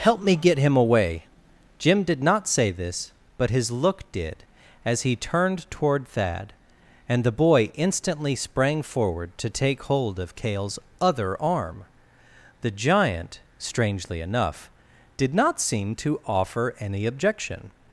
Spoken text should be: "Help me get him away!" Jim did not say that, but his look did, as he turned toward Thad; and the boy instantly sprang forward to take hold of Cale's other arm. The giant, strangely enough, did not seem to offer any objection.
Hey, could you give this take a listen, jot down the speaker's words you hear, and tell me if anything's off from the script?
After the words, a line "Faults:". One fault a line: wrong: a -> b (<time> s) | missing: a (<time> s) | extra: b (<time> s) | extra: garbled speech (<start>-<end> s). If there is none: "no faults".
"Help me get him away!" Jim did not say this, but his look did, as he turned toward Thad; and the boy instantly sprang forward to take hold of Cale's other arm. The giant, strangely enough, did not seem to offer any objection.
Faults:
wrong: that -> this (2.7 s)